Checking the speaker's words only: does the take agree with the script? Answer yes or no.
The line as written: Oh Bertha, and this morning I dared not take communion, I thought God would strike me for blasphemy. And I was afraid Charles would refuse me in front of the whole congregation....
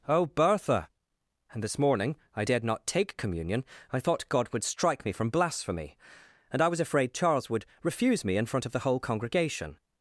no